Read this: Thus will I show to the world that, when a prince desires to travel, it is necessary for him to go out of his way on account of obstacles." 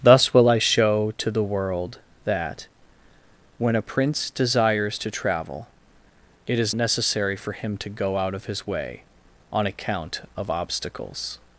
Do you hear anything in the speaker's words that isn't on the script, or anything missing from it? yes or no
no